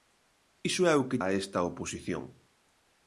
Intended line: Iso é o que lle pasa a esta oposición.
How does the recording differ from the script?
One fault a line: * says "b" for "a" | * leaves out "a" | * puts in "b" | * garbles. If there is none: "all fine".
* leaves out "lle pasa"